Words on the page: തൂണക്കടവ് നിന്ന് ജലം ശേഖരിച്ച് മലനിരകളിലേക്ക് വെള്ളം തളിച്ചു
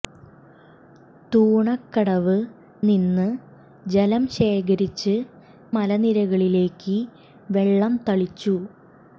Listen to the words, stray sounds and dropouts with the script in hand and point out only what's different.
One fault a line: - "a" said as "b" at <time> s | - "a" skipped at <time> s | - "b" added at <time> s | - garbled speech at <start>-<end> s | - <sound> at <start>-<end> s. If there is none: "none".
none